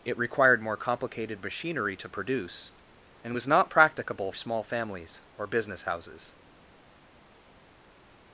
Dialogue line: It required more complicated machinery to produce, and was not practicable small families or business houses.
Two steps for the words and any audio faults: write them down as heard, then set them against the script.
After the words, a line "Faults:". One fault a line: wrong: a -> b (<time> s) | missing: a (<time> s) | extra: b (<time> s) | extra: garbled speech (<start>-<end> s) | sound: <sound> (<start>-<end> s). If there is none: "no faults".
It required more complicated machinery to produce, and was not practicable small families or business houses.
Faults:
no faults